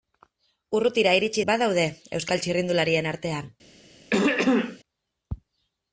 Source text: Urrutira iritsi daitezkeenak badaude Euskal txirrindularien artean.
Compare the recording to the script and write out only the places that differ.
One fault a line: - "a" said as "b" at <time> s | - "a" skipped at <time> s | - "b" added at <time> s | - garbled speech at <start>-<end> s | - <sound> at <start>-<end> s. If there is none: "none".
- "daitezkeenak" skipped at 1.4 s
- throat clearing at 4.1-4.8 s